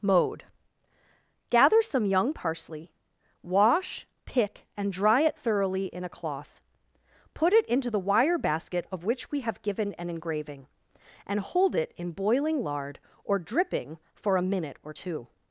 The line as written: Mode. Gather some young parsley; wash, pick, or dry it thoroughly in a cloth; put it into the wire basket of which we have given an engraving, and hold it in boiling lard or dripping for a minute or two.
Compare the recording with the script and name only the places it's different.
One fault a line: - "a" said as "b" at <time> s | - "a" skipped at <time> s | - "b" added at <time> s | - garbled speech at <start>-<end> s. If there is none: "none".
- "or" said as "and" at 4.8 s